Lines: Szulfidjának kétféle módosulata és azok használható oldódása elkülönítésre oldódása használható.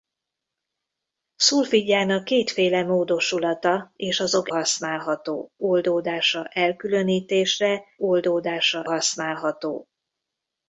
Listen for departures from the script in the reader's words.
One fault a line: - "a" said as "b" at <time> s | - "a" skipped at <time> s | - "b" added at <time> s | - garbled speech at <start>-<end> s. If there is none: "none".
none